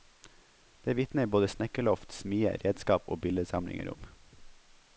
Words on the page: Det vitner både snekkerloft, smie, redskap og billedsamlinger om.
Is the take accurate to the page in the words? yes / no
yes